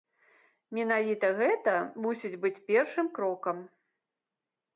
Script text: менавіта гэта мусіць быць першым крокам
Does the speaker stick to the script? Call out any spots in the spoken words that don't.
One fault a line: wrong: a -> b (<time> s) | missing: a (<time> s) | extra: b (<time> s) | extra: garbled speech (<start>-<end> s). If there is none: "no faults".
no faults